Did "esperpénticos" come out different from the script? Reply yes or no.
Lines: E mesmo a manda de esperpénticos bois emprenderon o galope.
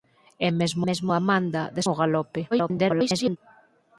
yes